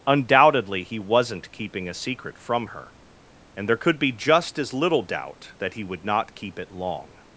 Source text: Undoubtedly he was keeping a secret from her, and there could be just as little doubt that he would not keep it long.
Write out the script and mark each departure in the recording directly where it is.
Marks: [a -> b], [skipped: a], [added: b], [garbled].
Undoubtedly he [was -> wasn't] keeping a secret from her, and there could be just as little doubt that he would not keep it long.